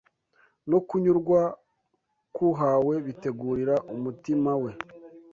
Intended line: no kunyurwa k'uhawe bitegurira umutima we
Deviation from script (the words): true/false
false